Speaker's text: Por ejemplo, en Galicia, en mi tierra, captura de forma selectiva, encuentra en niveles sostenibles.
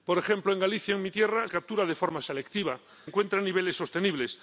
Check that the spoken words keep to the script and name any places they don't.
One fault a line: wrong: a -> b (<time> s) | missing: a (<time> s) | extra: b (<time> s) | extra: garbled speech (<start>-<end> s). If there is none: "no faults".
no faults